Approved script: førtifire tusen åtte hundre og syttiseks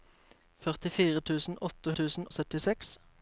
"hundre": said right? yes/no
no